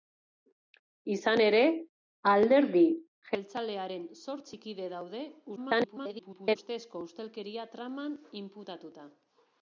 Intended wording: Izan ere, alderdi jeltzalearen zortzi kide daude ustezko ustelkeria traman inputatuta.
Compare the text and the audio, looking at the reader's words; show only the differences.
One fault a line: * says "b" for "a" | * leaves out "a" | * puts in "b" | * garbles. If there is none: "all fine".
* garbles